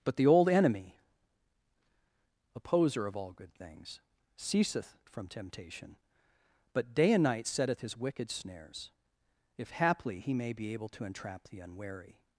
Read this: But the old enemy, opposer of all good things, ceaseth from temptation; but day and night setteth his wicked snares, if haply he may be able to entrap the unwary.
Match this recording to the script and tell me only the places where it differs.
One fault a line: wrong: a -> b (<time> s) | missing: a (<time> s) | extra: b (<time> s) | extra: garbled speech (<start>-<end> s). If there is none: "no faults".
no faults